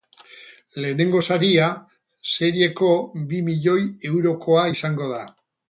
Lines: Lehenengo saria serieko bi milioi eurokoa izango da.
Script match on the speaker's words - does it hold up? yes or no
yes